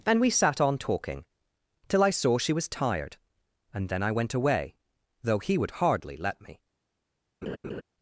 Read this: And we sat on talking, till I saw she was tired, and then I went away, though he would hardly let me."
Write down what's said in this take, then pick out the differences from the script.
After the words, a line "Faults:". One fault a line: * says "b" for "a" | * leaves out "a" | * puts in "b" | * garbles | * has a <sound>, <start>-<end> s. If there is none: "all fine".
And we sat on talking, till I saw she was tired, and then I went away, though he would hardly let me."
Faults:
* has a laugh, 7.4-7.8 s